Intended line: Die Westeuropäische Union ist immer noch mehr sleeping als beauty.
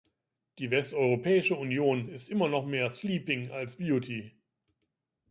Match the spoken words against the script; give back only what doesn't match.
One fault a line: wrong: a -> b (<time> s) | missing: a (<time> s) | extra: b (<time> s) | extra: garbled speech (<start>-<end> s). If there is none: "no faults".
no faults